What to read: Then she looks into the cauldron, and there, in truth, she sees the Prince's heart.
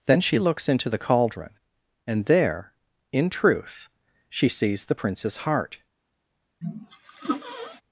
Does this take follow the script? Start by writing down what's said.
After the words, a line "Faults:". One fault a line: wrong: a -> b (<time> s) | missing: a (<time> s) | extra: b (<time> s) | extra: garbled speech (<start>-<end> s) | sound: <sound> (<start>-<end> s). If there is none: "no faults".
Then she looks into the cauldron, and there, in truth, she sees the Prince's heart.
Faults:
sound: sneeze (6.6-7.8 s)